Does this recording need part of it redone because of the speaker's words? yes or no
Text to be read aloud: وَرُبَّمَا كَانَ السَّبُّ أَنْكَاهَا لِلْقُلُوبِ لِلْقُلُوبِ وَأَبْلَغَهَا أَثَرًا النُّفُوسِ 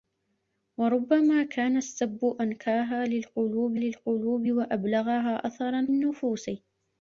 no